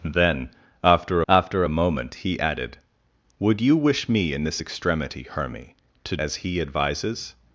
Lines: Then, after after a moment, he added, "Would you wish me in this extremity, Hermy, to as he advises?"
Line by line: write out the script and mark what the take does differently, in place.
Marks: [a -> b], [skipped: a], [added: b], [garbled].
Then, after after a moment, he added, "Would you wish me in this extremity, Hermy, to as he advises?"